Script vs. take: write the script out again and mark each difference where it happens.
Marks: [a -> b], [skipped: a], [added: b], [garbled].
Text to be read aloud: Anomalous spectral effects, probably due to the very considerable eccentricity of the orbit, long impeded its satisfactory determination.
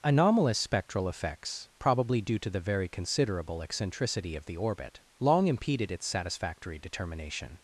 Anomalous spectral effects, probably due to the very considerable eccentricity of the orbit, long impeded its satisfactory determination.